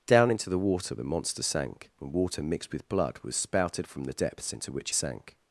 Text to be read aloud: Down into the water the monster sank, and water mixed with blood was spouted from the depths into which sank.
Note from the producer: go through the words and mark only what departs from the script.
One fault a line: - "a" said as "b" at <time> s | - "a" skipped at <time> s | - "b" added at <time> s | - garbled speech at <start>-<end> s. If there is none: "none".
none